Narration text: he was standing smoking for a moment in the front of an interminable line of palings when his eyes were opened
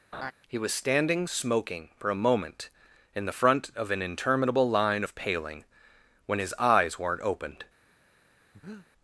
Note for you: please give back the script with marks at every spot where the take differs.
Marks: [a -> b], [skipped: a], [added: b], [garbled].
he was standing smoking for a moment in the front of an interminable line of [palings -> paling] when his eyes [were -> weren't] opened